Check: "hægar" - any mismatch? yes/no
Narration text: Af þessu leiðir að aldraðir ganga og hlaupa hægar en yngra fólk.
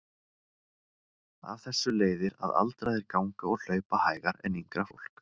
no